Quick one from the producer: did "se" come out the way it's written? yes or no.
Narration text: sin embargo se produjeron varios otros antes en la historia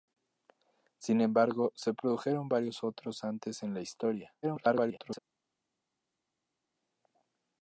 yes